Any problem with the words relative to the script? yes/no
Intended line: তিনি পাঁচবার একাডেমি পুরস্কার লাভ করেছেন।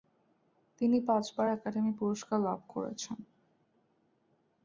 no